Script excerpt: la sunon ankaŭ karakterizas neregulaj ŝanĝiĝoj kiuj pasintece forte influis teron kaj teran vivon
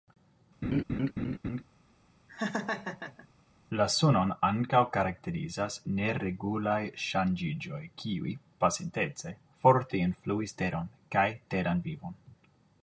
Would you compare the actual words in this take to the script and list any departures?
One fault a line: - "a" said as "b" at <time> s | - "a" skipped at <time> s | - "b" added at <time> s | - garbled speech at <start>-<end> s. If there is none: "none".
none